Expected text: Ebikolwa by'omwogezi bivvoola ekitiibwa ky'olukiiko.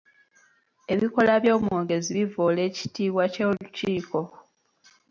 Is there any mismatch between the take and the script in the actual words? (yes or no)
no